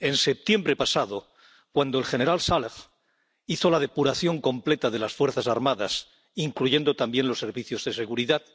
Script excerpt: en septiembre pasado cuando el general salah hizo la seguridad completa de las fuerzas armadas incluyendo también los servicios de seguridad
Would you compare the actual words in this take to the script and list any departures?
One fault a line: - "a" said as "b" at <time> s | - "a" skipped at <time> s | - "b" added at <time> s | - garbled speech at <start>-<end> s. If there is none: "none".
- "seguridad" said as "depuración" at 3.8 s